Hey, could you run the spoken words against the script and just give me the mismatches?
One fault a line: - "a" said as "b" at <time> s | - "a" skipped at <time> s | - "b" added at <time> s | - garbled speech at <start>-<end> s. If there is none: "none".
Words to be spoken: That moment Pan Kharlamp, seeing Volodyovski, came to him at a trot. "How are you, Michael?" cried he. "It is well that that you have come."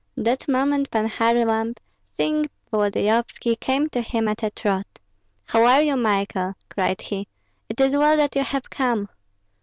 - "that" skipped at 8.3 s